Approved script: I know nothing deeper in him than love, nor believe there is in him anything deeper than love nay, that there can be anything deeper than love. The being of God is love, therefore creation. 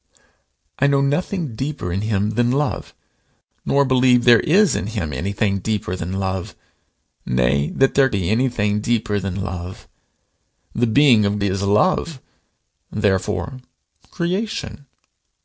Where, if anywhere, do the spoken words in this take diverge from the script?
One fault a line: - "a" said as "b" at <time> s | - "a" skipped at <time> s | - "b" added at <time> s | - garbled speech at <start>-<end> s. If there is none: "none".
- "can" skipped at 8.1 s
- "God" skipped at 11.4 s